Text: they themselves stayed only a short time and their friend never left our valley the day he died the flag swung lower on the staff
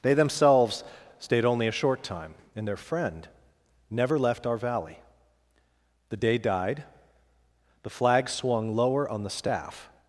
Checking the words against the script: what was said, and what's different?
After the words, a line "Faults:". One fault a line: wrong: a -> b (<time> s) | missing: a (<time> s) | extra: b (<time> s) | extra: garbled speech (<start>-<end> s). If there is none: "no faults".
they themselves stayed only a short time and their friend never left our valley the day died the flag swung lower on the staff
Faults:
missing: he (6.4 s)